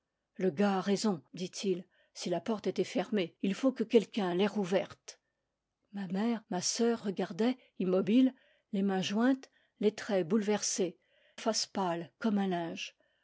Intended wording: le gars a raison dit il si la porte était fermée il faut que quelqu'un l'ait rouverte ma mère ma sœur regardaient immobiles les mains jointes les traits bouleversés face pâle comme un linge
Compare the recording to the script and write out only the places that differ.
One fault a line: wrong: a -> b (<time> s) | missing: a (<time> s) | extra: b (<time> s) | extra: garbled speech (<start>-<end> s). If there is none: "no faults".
no faults